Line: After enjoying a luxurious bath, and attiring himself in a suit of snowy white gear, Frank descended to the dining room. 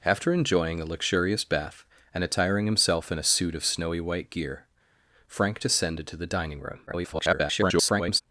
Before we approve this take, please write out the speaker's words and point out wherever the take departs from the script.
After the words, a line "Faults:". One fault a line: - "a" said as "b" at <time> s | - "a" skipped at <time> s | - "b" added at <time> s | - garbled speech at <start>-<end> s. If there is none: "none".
After enjoying a luxurious bath, and attiring himself in a suit of snowy white gear, Frank descended to the dining room. [garbled]
Faults:
- garbled speech at 6.9-8.2 s